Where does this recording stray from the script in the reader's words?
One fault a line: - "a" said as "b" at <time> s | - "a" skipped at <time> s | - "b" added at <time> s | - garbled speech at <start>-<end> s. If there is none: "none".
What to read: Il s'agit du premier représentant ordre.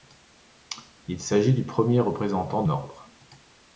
none